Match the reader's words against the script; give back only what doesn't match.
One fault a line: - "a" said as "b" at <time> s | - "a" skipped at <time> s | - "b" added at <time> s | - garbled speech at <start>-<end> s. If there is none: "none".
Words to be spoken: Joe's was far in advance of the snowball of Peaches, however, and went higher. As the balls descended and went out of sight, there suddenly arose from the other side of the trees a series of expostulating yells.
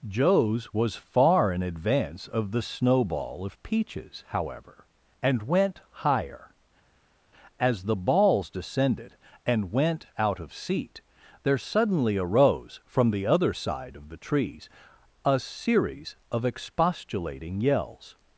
- "sight" said as "seat" at 10.5 s